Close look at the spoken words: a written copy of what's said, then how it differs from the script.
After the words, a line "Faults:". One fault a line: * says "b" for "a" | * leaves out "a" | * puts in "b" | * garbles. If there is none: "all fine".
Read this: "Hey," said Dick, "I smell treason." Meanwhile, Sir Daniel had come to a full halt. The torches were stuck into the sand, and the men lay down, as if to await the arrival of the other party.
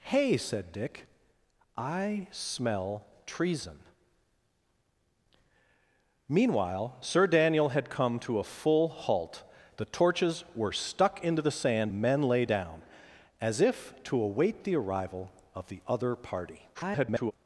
"Hey," said Dick, "I smell treason." Meanwhile, Sir Daniel had come to a full halt. The torches were stuck into the sand, the men lay down, as if to await the arrival of the other party. [garbled]
Faults:
* leaves out "and"
* garbles